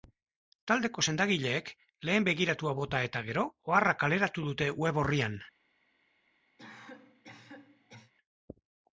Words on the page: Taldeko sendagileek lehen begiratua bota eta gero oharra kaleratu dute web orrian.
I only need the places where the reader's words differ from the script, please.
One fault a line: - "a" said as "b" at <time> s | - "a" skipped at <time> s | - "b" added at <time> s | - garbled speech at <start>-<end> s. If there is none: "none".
none